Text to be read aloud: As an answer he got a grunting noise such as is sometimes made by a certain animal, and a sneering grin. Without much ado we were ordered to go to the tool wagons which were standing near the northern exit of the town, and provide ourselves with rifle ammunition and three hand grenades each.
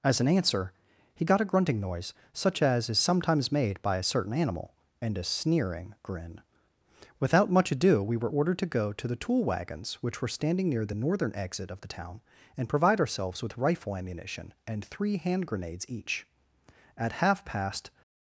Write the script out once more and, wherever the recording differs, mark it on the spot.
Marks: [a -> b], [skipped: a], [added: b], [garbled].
As an answer he got a grunting noise such as is sometimes made by a certain animal, and a sneering grin. Without much ado we were ordered to go to the tool wagons which were standing near the northern exit of the town, and provide ourselves with rifle ammunition and three hand grenades each. [added: At half past]